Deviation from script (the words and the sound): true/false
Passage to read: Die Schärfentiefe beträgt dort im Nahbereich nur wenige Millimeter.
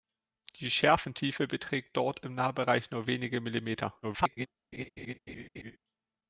true